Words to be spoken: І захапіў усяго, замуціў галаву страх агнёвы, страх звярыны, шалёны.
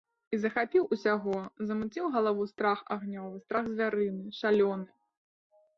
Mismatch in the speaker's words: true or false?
false